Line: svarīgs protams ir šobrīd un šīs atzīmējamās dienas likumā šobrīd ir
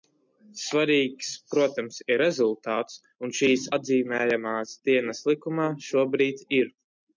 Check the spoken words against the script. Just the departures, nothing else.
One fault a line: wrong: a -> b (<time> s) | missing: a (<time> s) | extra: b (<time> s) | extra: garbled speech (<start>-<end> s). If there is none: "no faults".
wrong: šobrīd -> rezultāts (2.2 s)